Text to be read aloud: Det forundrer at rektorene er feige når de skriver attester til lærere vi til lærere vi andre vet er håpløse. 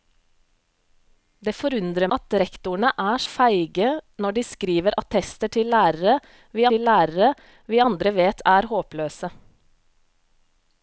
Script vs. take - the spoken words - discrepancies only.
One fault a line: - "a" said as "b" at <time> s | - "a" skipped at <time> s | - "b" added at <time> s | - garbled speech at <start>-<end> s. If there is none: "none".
none